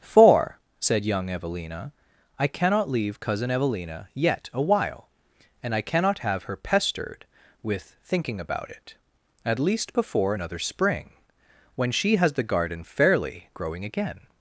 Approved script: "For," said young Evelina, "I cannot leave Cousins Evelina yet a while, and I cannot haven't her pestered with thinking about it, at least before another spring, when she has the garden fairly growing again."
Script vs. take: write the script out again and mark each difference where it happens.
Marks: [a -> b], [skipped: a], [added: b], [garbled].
"For," said young Evelina, "I cannot leave [Cousins -> Cousin] Evelina yet a while, and I cannot [haven't -> have] her pestered with thinking about it, at least before another spring, when she has the garden fairly growing again."